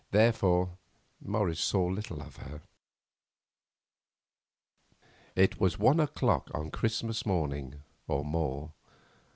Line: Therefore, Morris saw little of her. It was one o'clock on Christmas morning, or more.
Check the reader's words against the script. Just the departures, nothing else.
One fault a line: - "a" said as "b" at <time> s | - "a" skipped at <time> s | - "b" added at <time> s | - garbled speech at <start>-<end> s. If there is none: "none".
none